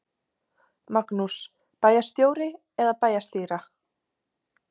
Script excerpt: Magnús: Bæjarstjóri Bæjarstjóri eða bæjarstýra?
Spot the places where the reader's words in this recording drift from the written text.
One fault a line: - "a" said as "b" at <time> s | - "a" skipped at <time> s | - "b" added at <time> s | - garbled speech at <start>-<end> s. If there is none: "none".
- "Bæjarstjóri" skipped at 2.5 s